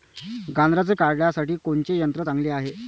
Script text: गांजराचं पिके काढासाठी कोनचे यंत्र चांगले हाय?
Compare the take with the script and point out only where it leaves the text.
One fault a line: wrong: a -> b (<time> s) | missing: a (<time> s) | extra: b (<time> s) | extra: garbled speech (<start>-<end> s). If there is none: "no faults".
missing: पिके (0.9 s)